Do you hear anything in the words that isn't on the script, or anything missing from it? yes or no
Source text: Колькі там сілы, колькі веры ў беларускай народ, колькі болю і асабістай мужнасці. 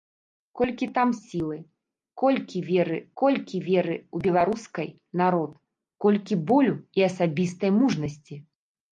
yes